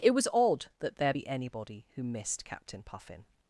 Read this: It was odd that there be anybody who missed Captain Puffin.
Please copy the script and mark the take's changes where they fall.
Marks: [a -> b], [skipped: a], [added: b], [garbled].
It was odd that there be anybody who missed Captain Puffin.